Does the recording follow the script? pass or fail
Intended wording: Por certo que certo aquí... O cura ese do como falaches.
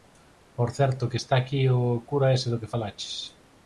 fail